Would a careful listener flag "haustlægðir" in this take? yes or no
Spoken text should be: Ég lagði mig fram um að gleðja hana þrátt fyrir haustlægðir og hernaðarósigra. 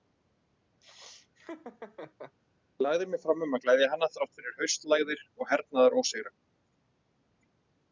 no